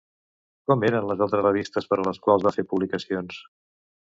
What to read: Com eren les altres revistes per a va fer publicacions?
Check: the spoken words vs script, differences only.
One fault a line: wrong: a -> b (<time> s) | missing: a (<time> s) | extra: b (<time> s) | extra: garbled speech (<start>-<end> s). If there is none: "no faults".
extra: les quals (2.1 s)